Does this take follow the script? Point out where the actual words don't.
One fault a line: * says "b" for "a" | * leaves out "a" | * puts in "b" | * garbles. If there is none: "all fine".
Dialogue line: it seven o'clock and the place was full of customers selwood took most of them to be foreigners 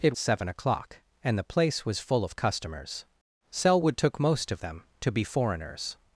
all fine